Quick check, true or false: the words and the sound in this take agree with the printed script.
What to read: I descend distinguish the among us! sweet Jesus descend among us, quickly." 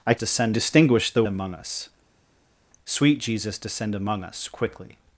true